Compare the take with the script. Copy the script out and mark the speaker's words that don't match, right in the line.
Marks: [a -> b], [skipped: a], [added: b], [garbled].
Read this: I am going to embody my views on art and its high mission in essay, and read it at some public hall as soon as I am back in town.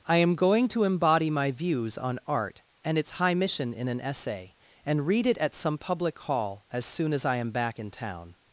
I am going to embody my views on art and its high mission in [added: an] essay, and read it at some public hall as soon as I am back in town.